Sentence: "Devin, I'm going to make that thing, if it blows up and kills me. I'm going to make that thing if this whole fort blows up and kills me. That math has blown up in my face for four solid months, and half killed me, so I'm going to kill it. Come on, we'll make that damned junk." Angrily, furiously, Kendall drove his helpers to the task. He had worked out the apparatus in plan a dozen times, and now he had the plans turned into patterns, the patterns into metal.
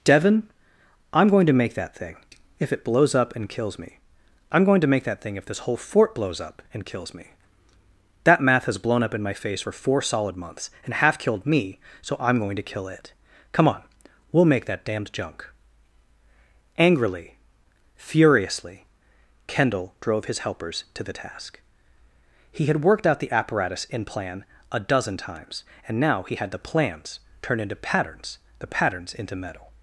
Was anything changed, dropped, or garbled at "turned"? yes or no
yes